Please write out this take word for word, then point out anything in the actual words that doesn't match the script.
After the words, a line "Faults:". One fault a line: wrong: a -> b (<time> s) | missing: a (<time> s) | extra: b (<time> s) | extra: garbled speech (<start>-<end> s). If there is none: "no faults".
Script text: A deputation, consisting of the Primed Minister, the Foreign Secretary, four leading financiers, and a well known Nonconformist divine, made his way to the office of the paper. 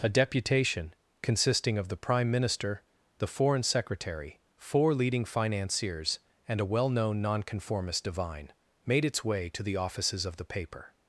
A deputation, consisting of the Prime Minister, the Foreign Secretary, four leading financiers, and a well known Nonconformist divine, made its way to the offices of the paper.
Faults:
wrong: Primed -> Prime (2.0 s)
wrong: his -> its (9.0 s)
wrong: office -> offices (9.8 s)